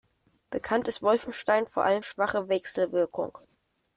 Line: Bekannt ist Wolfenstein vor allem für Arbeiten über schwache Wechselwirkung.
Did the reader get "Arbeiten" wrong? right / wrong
wrong